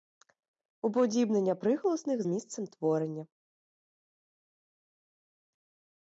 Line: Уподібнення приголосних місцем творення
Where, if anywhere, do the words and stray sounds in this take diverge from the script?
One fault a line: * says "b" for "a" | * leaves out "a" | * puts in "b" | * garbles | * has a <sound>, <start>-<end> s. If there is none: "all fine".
all fine